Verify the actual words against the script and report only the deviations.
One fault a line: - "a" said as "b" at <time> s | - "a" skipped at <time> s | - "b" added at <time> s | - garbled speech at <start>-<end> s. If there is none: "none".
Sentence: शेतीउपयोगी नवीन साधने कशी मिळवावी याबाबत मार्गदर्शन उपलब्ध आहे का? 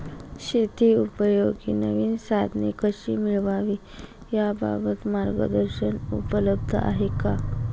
none